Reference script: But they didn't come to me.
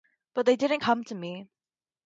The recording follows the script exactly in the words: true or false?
true